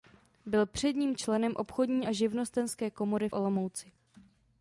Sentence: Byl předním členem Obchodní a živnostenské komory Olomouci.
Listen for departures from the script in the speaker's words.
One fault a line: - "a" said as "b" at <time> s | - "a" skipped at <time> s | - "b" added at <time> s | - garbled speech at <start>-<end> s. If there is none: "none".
none